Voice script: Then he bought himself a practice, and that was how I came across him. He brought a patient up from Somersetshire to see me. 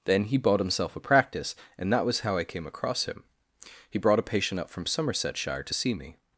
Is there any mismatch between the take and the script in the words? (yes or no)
no